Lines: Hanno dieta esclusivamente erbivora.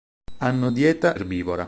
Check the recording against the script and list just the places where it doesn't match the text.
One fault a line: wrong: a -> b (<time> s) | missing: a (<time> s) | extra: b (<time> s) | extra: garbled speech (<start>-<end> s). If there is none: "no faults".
missing: esclusivamente (1.2 s)